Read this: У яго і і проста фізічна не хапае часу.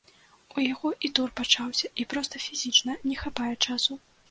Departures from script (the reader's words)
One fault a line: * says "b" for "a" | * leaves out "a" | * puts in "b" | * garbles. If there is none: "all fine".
* puts in "тур пачаўся"